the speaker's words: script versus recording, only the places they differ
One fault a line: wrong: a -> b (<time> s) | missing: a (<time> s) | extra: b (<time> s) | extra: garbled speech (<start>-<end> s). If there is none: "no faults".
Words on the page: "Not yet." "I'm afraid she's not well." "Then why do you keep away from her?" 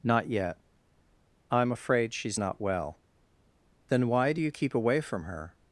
no faults